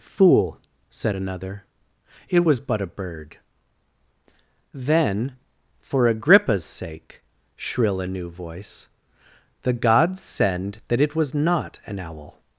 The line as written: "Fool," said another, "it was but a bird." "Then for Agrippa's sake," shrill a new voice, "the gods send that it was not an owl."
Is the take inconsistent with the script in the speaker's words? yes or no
no